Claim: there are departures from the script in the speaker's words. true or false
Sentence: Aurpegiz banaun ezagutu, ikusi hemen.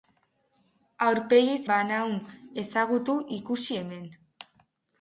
false